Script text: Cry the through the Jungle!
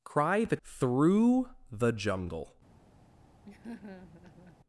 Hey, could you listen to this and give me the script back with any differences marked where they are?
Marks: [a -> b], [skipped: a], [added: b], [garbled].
Cry the through the Jungle!